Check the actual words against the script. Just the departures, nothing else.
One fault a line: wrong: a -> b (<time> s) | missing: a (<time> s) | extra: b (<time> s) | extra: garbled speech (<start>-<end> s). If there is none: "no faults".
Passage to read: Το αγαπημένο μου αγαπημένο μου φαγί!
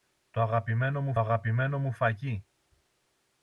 no faults